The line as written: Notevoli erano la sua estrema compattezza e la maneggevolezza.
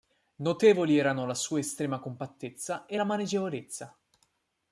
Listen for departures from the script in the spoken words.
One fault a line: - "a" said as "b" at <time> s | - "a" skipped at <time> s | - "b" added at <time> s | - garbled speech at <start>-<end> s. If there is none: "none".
none